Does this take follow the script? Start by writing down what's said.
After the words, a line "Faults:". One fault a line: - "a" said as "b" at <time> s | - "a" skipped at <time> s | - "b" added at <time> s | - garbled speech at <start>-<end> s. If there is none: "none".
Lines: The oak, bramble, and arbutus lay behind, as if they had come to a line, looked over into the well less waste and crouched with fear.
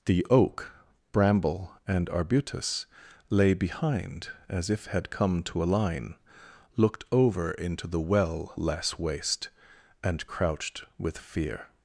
The oak, bramble, and arbutus lay behind, as if had come to a line, looked over into the well less waste and crouched with fear.
Faults:
- "they" skipped at 4.9 s